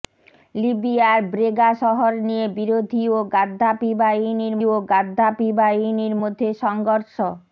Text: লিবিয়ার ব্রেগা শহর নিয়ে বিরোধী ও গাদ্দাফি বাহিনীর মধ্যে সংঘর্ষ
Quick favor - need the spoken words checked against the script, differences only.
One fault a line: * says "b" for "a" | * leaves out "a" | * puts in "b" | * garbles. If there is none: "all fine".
* puts in "ও গাদ্দাফি বাহিনীর"